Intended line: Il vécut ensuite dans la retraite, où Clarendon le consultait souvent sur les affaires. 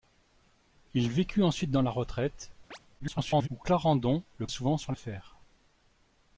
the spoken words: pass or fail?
fail